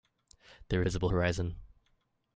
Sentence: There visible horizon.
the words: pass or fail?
pass